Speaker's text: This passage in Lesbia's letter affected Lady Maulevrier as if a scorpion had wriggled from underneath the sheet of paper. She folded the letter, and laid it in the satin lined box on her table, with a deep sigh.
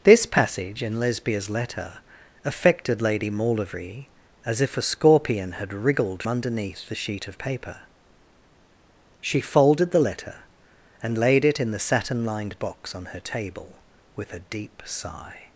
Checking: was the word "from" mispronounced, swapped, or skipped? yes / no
yes